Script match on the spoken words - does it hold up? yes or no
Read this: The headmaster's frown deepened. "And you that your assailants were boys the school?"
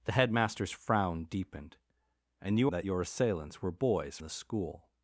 yes